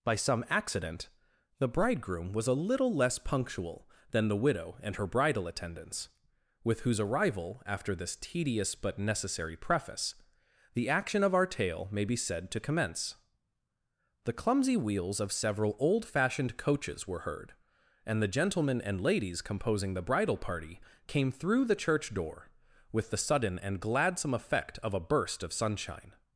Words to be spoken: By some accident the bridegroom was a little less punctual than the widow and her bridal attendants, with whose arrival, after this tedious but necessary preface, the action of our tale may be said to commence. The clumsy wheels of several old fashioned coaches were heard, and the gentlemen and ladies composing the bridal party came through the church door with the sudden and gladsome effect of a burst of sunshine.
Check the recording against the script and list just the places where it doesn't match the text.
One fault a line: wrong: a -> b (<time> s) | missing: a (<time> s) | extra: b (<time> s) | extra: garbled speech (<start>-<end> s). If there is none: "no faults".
no faults